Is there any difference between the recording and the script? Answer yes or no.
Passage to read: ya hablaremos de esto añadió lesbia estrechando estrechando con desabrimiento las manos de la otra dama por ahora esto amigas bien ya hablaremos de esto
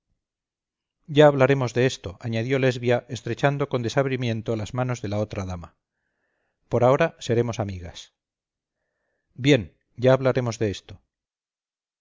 yes